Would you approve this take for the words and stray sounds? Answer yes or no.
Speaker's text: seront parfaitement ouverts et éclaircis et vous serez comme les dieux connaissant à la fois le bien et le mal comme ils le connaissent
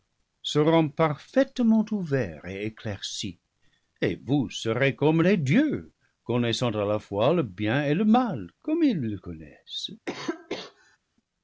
no